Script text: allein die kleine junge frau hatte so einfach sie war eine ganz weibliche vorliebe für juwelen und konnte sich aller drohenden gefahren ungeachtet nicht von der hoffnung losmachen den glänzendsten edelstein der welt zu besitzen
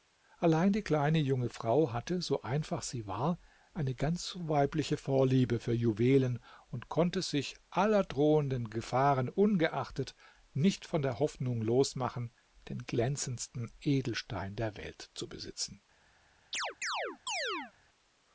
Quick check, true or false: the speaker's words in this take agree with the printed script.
true